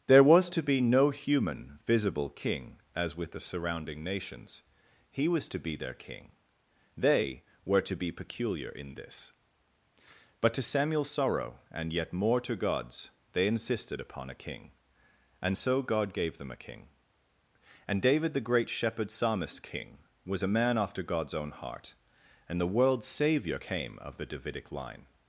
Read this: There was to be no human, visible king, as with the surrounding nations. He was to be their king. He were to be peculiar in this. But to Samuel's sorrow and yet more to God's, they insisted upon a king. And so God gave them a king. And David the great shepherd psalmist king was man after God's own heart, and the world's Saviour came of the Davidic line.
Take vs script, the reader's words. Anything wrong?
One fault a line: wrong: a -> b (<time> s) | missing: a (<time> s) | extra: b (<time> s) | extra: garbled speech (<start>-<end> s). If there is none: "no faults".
wrong: He -> They (6.9 s)
extra: a (20.4 s)